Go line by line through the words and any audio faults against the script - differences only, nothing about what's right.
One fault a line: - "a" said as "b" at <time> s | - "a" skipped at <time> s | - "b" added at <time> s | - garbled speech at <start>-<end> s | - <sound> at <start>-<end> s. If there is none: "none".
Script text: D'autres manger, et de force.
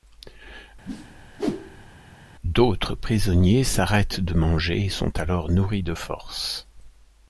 - whoosh at 0.8-1.9 s
- "prisonniers s'arrêtent de" added at 2.9 s
- "sont alors nourris" added at 4.9 s